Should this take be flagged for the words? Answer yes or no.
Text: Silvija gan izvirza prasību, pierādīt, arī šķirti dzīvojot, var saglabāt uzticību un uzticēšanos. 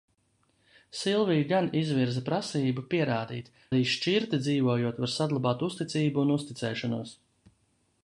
no